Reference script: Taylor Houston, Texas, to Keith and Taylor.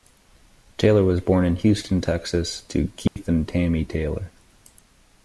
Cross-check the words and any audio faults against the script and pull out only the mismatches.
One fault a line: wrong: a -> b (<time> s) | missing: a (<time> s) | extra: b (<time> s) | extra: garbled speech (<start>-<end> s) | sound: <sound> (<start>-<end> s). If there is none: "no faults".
extra: was born in (1.0 s)
sound: dropout (3.1-3.2 s)
extra: Tammy (3.5 s)